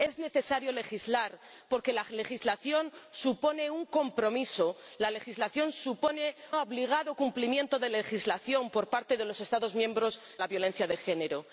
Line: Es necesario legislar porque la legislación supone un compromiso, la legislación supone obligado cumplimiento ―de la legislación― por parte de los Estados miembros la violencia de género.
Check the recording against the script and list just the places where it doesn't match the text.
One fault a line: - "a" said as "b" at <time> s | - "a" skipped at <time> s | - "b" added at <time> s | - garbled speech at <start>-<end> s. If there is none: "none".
none